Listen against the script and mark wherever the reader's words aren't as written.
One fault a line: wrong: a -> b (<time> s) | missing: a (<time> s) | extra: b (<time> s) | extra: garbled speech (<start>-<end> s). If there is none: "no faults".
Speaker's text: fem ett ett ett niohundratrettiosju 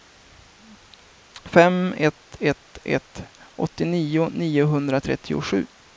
extra: åttionio (3.6 s)